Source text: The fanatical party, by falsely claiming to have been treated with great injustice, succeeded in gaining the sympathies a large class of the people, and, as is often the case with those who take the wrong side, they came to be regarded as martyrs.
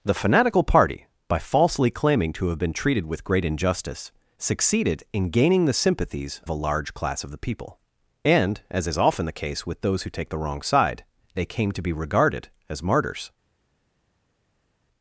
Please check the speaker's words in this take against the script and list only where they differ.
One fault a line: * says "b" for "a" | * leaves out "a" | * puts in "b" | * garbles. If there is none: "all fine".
all fine